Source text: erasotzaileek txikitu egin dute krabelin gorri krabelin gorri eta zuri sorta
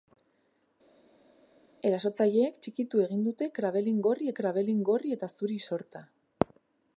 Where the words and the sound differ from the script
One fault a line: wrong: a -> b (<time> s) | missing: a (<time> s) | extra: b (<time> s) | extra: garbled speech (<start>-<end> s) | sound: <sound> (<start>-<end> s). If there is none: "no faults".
no faults